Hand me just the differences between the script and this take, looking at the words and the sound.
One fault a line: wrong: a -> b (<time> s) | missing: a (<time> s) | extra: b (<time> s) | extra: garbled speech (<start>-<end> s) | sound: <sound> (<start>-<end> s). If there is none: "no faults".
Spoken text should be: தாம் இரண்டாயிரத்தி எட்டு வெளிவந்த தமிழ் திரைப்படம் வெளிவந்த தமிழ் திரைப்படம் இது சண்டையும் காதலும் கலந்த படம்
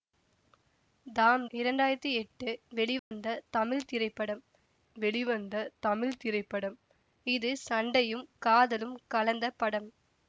sound: dropout (3.0-3.1 s)